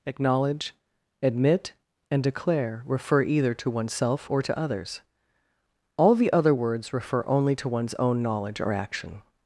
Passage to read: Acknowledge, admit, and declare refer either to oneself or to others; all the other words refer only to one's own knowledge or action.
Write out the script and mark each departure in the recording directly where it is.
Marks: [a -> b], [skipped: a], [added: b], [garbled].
Acknowledge, admit, and declare refer either to oneself or to others; all the other words refer only to one's own knowledge or action.